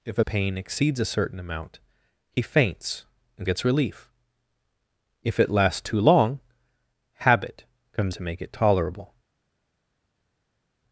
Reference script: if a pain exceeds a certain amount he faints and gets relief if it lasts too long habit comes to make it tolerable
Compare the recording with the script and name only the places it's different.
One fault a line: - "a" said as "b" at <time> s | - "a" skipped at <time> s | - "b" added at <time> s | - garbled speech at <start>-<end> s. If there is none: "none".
none